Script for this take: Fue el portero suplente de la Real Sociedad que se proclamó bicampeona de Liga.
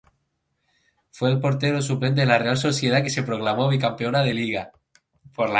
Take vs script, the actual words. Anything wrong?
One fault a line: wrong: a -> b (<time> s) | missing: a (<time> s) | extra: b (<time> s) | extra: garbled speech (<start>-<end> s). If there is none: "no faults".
no faults